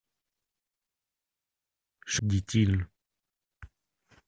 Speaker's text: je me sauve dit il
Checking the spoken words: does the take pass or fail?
fail